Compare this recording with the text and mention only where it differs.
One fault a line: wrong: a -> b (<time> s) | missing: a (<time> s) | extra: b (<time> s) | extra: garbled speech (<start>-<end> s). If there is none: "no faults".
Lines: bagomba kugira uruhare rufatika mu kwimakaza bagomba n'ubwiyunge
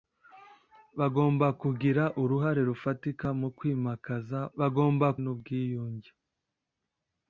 no faults